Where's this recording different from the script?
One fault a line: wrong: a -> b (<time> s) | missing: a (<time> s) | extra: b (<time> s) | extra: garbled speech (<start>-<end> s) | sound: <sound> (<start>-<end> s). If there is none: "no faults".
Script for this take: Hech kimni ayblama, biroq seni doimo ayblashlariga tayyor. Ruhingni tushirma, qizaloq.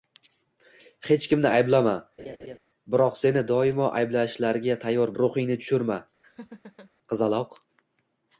sound: laugh (2.2-2.6 s)
sound: laugh (6.2-6.9 s)